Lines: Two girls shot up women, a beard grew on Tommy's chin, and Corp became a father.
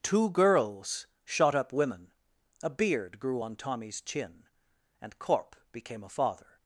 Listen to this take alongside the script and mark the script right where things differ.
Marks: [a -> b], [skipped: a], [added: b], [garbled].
Two girls shot up women, a beard grew on Tommy's chin, and Corp became a father.